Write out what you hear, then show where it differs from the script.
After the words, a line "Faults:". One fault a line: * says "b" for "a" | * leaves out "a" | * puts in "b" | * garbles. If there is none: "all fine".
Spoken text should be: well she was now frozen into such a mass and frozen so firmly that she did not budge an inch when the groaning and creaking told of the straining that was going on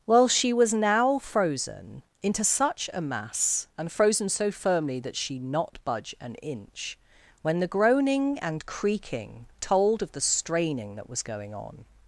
well she was now frozen into such a mass and frozen so firmly that she not budge an inch when the groaning and creaking told of the straining that was going on
Faults:
* leaves out "did"